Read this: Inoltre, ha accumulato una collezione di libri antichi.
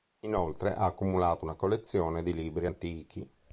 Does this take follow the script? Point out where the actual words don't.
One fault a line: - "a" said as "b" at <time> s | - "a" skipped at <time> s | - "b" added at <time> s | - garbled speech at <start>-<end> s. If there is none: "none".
none